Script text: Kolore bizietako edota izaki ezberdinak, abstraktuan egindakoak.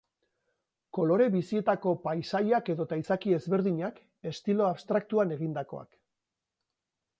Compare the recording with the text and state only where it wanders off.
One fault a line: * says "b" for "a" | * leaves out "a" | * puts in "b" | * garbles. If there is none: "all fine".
* puts in "paisaiak"
* puts in "estilo"